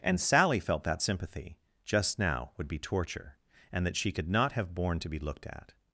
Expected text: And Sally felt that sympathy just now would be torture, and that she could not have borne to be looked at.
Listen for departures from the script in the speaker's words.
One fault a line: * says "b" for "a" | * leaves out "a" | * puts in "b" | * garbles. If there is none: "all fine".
all fine